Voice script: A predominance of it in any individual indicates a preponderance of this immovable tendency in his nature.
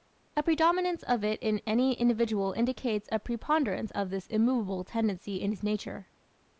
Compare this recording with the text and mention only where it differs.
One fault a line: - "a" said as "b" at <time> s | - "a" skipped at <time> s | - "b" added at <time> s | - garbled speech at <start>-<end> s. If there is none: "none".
none